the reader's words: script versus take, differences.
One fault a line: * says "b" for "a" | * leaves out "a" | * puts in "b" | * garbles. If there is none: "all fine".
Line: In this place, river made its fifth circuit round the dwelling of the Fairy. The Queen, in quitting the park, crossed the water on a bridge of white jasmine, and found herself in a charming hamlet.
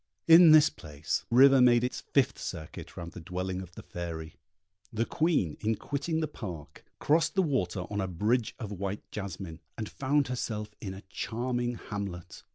all fine